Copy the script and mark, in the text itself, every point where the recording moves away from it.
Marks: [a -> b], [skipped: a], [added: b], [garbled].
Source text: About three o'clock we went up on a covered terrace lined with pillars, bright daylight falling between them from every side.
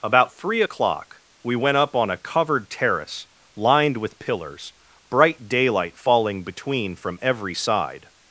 About three o'clock we went up on a covered terrace lined with pillars, bright daylight falling between [skipped: them] from every side.